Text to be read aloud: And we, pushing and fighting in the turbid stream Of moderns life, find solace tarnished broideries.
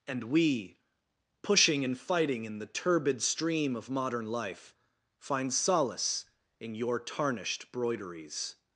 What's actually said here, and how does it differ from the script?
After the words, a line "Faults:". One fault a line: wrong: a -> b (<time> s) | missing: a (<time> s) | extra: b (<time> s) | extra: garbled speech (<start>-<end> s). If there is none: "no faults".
And we, pushing and fighting in the turbid stream Of modern life, find solace in your tarnished broideries.
Faults:
wrong: moderns -> modern (3.9 s)
extra: in your (6.6 s)